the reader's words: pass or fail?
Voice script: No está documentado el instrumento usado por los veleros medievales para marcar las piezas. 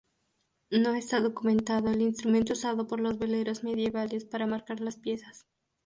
pass